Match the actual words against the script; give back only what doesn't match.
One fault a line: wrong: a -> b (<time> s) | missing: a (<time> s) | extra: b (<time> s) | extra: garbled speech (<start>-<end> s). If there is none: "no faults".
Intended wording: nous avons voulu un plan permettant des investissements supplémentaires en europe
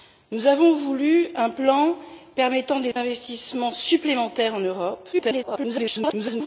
extra: garbled speech (5.1-6.5 s)